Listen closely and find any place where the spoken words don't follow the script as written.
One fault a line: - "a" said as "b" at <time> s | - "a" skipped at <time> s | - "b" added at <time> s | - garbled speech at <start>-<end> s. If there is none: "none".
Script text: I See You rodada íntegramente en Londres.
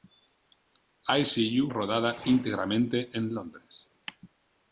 none